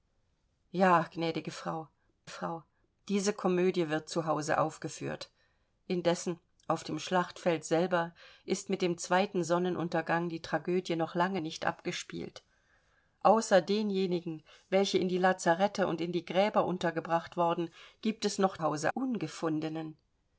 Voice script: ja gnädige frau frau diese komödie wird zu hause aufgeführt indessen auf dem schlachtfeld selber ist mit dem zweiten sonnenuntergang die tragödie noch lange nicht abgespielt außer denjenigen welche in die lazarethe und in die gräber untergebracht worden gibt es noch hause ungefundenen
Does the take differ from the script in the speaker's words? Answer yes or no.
no